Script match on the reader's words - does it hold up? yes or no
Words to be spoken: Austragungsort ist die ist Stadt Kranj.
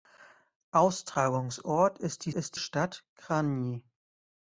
yes